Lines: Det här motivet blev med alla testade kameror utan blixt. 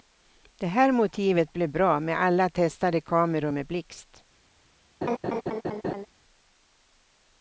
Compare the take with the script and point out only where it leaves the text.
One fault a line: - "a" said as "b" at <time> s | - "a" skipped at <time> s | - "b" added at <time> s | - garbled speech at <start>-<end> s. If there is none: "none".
- "bra" added at 1.7 s
- "utan" said as "med" at 3.5 s